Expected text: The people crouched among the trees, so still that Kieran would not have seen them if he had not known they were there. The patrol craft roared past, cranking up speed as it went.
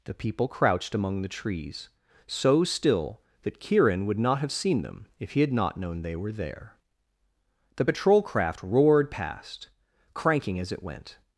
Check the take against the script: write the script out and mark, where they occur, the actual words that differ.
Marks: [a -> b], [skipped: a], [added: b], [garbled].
The people crouched among the trees, so still that Kieran would not have seen them if he had not known they were there. The patrol craft roared past, cranking [skipped: up speed] as it went.